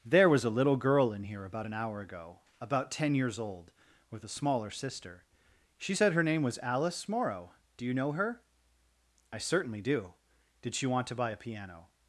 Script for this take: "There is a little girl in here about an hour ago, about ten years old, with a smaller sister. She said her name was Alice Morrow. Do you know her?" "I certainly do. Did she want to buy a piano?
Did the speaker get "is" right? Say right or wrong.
wrong